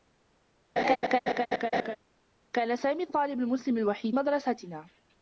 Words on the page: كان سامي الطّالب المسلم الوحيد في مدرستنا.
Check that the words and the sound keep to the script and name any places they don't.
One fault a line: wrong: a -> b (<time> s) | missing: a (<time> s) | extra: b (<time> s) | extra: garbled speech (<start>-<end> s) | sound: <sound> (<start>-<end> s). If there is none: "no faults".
sound: laugh (0.8-2.0 s)
missing: في (4.2 s)